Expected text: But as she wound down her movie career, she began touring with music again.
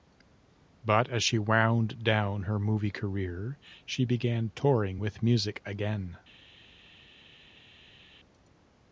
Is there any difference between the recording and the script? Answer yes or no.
no